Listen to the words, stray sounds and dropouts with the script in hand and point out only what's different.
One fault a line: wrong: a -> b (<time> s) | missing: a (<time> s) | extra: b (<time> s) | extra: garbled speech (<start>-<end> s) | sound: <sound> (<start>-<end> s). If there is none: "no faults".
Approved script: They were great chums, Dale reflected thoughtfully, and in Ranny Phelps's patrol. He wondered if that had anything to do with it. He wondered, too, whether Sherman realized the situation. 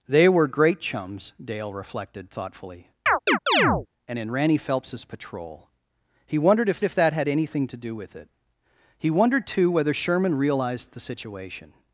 sound: chirp (3.1-3.9 s)
extra: if (6.8 s)